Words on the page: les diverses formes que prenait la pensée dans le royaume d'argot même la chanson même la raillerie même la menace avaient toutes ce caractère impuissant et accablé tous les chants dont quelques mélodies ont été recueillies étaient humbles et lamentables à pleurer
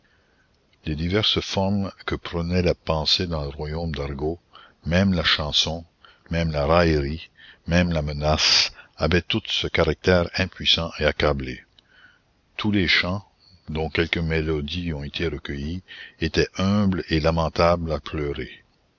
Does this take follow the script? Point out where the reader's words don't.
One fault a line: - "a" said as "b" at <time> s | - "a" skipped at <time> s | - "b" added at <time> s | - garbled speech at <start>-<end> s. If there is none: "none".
none